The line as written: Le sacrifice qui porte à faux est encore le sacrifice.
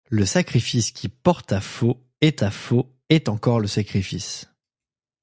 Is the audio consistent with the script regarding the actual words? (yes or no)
no